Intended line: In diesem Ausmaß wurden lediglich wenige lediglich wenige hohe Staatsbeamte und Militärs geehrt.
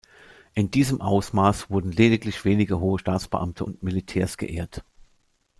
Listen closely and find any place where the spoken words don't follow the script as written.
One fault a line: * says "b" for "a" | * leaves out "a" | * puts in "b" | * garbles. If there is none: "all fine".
* leaves out "lediglich wenige"